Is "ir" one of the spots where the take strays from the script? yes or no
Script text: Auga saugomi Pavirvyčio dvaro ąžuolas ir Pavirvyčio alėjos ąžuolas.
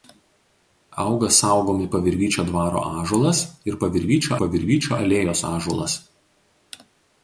no